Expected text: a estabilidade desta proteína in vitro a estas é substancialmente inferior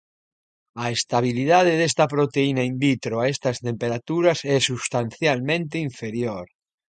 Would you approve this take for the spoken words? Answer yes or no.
no